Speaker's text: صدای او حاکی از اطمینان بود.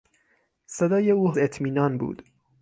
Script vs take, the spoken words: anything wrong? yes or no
yes